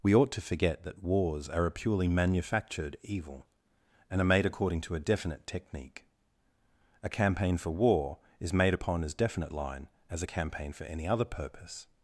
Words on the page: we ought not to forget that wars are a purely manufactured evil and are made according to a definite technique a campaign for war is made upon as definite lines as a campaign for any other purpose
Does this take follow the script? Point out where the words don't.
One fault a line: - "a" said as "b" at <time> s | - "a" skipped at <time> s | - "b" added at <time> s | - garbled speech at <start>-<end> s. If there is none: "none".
- "not" skipped at 0.3 s
- "lines" said as "line" at 9.5 s